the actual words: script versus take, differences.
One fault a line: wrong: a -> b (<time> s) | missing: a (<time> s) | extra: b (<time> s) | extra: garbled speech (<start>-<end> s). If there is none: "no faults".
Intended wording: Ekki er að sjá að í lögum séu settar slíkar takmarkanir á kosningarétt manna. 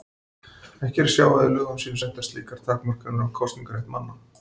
no faults